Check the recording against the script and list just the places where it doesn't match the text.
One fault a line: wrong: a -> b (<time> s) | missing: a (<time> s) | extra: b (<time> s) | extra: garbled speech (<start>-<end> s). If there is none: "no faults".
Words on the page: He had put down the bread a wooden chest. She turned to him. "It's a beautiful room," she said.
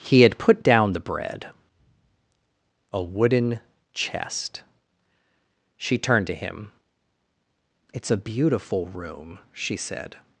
no faults